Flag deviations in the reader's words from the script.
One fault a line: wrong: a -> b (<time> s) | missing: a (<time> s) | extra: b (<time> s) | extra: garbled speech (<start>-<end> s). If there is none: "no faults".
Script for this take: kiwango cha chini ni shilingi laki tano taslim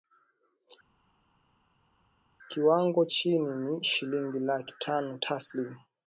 missing: cha (3.1 s)